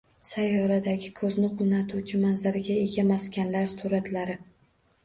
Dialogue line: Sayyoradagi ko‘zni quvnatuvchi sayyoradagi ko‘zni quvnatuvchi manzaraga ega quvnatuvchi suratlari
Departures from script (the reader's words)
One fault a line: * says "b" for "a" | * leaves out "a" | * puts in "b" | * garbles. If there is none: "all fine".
* leaves out "sayyoradagi ko‘zni quvnatuvchi"
* says "maskanlar" for "quvnatuvchi"